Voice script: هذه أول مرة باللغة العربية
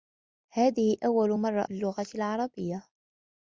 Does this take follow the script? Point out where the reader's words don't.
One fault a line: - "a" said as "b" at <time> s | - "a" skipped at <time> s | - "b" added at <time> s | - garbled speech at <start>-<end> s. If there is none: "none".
none